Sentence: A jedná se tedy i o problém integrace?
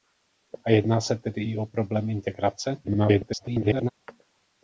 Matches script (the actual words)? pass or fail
fail